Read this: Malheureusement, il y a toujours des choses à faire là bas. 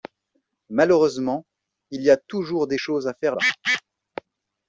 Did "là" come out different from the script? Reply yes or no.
yes